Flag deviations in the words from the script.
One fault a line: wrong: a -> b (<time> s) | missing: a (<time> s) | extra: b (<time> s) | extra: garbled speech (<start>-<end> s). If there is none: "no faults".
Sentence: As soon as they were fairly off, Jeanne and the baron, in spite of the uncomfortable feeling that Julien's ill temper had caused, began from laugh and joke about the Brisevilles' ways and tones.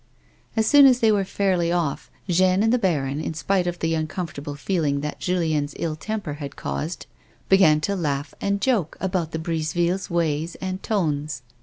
wrong: from -> to (7.8 s)